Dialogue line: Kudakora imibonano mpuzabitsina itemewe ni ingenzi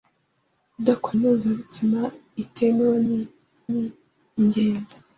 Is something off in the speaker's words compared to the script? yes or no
yes